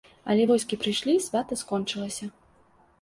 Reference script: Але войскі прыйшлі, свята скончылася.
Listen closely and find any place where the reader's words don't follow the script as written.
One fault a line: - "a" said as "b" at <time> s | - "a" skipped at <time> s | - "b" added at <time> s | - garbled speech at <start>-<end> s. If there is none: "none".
none